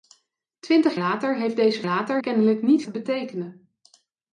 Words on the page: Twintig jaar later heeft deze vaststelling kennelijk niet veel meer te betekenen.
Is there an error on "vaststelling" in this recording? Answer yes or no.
yes